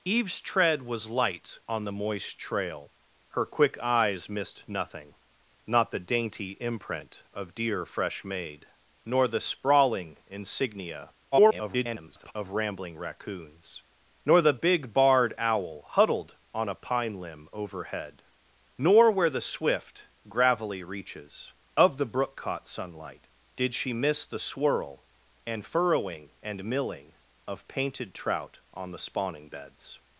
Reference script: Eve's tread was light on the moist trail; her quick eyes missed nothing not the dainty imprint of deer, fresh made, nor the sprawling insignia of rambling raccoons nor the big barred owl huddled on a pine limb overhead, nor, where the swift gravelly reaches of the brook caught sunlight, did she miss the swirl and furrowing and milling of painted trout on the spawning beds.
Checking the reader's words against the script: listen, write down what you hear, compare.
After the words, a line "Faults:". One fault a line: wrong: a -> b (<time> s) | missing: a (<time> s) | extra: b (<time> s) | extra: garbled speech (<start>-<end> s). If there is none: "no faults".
Eve's tread was light on the moist trail; her quick eyes missed nothing not the dainty imprint of deer, fresh made, nor the sprawling insignia [garbled] of rambling raccoons nor the big barred owl huddled on a pine limb overhead, nor, where the swift gravelly reaches of the brook caught sunlight, did she miss the swirl and furrowing and milling of painted trout on the spawning beds.
Faults:
extra: garbled speech (11.3-12.3 s)